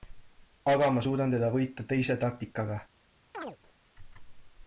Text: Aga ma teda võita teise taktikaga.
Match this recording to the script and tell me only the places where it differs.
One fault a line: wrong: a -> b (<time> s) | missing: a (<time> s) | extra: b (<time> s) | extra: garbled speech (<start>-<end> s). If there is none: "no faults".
extra: suudan (1.0 s)